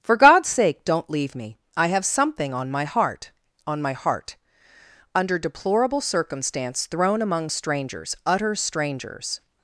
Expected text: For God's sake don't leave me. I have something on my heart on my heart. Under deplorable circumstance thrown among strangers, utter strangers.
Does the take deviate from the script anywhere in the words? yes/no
no